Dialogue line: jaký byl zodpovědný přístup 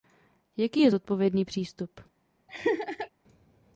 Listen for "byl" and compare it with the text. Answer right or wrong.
wrong